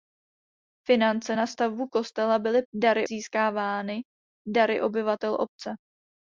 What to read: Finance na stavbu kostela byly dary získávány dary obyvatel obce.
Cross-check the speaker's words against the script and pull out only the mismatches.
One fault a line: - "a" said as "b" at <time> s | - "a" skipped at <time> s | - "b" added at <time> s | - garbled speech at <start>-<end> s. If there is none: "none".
none